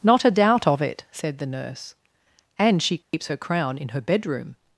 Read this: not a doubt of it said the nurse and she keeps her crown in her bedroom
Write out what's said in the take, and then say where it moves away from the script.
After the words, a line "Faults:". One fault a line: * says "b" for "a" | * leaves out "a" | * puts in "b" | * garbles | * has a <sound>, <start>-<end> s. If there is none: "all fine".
not a doubt of it said the nurse and she keeps her crown in her bedroom
Faults:
* has a dropout, 3.0-3.1 s